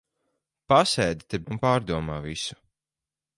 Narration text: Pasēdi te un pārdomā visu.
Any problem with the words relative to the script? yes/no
no